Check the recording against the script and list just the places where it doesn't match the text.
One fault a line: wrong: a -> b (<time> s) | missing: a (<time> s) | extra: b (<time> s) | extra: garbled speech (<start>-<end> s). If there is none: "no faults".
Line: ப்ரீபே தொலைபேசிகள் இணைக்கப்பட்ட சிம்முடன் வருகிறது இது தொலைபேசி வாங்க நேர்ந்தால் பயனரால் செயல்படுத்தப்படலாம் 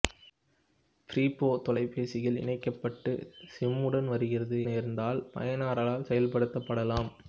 missing: இது தொலைபேசி வாங்க (4.6 s)